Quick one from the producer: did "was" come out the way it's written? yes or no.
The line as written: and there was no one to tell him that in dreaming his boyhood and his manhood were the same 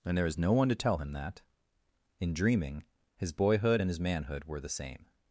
no